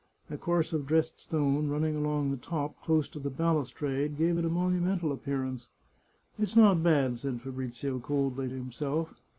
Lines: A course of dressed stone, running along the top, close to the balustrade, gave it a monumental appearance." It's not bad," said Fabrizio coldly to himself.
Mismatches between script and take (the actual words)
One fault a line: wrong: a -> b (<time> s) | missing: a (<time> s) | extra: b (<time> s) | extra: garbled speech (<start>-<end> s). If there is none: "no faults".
no faults